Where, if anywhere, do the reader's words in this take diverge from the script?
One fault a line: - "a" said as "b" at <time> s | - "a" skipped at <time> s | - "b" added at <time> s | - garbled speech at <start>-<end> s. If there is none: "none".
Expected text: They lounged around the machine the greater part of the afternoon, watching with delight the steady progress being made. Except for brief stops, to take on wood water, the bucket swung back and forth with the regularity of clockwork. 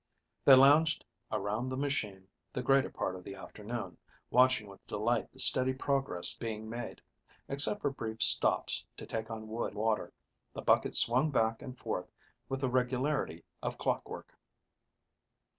none